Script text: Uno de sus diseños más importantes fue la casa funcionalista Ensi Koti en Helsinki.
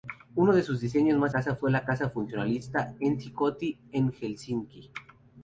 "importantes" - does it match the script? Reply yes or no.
no